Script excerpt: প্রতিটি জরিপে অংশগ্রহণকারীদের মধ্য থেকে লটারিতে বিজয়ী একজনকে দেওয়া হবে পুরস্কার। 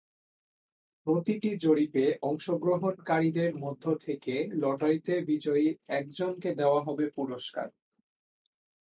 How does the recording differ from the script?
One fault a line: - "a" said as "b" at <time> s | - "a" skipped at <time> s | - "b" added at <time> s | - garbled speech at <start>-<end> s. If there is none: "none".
none